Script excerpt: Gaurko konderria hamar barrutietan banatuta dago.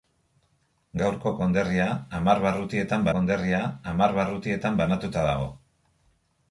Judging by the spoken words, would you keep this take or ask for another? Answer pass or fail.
fail